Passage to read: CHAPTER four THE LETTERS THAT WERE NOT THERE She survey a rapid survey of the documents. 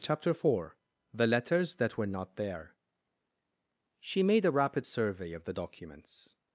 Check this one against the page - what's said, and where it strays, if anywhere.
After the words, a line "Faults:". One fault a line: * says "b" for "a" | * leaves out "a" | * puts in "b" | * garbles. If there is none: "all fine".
CHAPTER four THE LETTERS THAT WERE NOT THERE She made a rapid survey of the documents.
Faults:
* says "made" for "survey"